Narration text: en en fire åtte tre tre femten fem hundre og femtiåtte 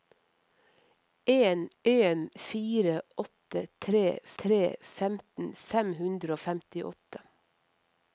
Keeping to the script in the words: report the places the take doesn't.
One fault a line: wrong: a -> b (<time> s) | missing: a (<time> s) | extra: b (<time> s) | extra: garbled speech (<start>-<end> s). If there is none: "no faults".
no faults